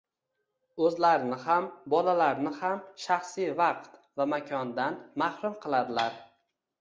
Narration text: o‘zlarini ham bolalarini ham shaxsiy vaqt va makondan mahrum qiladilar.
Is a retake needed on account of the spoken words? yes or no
no